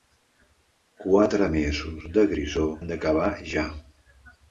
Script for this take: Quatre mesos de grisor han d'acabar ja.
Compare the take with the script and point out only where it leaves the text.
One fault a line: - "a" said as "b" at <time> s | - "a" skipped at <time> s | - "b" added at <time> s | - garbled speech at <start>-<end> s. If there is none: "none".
none